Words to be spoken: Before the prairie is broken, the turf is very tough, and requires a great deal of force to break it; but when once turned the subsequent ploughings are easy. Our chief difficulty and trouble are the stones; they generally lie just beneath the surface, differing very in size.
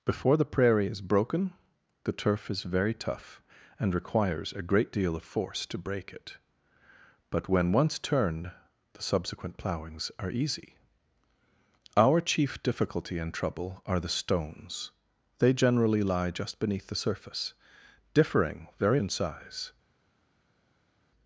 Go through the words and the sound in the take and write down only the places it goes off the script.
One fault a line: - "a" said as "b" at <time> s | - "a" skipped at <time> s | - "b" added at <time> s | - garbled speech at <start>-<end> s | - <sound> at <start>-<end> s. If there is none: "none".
none